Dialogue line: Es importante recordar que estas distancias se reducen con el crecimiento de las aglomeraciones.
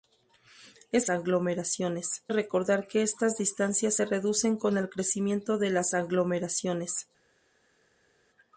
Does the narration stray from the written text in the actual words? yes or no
yes